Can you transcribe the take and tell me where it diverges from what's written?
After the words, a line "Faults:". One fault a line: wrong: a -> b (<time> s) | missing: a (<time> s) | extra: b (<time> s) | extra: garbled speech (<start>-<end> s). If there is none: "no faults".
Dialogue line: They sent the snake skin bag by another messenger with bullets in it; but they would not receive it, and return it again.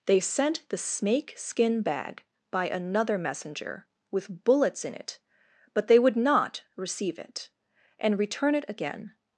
They sent the snake skin bag by another messenger with bullets in it; but they would not receive it, and return it again.
Faults:
no faults